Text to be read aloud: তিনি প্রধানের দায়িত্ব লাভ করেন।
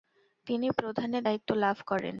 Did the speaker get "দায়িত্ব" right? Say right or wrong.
right